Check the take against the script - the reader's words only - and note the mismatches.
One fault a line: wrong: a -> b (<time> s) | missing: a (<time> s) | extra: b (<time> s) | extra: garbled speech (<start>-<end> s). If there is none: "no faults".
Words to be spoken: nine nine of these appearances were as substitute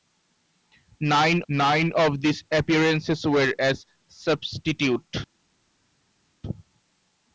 no faults